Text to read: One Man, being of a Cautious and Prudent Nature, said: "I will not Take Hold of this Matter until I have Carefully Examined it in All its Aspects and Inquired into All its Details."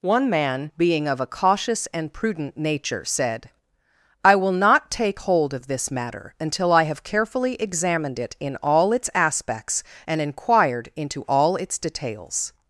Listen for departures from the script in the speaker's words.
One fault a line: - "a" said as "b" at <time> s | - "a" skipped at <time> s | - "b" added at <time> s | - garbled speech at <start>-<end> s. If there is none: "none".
none